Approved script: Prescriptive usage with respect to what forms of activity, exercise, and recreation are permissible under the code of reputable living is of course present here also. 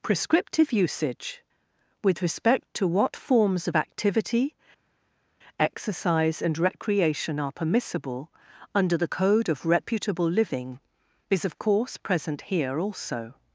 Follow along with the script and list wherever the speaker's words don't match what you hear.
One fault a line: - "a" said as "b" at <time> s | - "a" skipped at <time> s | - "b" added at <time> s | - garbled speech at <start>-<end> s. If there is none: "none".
none